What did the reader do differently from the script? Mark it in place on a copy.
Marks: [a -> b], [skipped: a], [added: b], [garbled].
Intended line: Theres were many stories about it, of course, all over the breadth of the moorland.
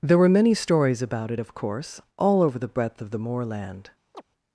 [Theres -> There] were many stories about it, of course, all over the breadth of the moorland.